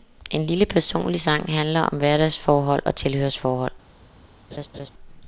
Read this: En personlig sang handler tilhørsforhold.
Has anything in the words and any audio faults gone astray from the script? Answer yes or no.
yes